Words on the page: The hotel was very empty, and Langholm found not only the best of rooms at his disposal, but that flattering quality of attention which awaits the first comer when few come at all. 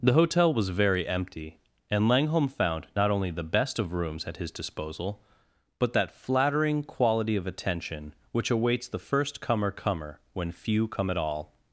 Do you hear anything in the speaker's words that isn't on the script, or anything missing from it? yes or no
yes